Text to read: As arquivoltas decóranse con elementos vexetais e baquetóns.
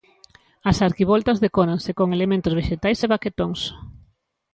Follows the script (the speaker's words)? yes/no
yes